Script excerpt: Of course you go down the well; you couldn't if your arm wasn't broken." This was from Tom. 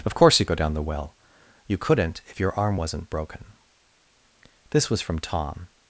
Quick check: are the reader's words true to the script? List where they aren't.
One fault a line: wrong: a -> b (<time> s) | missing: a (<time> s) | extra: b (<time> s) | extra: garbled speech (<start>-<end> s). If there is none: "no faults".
no faults